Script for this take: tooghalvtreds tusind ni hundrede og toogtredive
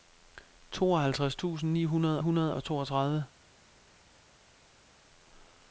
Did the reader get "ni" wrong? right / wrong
right